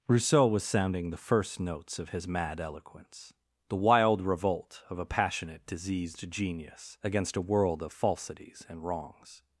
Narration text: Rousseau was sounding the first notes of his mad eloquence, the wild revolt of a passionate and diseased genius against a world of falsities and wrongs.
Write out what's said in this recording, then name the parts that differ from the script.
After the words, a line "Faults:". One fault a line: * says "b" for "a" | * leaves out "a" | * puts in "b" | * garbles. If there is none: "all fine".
Rousseau was sounding the first notes of his mad eloquence, the wild revolt of a passionate diseased genius against a world of falsities and wrongs.
Faults:
* leaves out "and"